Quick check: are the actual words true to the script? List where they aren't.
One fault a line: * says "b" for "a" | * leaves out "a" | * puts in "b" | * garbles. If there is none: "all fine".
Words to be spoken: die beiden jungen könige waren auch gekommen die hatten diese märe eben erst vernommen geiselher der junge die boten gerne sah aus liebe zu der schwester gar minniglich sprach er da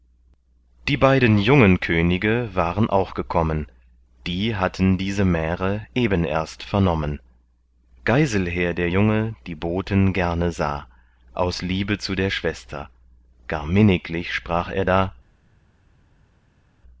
all fine